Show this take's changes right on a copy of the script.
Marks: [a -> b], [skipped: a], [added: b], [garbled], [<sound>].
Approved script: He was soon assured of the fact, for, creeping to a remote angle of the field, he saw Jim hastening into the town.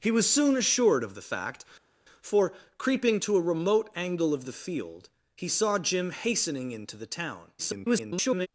He was soon assured of the fact, for, creeping to a remote angle of the field, he saw Jim hastening into the town. [garbled]